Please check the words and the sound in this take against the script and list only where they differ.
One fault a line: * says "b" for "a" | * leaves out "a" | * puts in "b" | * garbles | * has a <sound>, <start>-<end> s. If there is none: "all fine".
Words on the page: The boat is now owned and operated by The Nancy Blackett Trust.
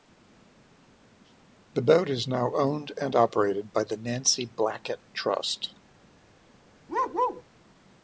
* has a bark, 6.9-7.4 s